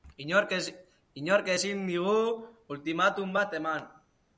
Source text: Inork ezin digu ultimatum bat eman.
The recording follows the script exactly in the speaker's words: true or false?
true